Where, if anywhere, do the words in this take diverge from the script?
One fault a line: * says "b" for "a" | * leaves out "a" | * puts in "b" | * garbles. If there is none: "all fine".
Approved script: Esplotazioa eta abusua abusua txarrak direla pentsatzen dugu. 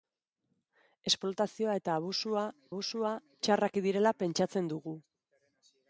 all fine